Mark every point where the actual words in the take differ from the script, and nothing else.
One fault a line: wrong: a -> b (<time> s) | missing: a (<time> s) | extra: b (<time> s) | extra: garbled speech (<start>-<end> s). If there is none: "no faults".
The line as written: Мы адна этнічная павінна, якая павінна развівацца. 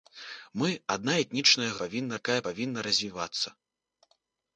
no faults